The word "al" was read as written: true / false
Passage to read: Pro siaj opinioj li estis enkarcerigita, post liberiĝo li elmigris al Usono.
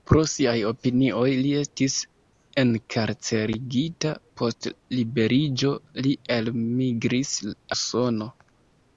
false